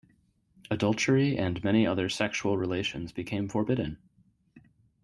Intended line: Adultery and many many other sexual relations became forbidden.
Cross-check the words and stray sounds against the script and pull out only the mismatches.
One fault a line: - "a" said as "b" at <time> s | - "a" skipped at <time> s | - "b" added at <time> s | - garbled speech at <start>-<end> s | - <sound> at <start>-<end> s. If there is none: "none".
- "many" skipped at 1.9 s